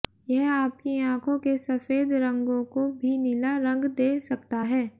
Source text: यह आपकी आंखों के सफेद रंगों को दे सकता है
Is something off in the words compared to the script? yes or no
yes